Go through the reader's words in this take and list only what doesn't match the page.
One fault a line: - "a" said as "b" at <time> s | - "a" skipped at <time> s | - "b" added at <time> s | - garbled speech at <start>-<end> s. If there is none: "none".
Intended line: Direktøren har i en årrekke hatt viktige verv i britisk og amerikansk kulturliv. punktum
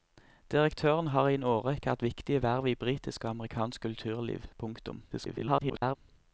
- garbled speech at 5.1-6.0 s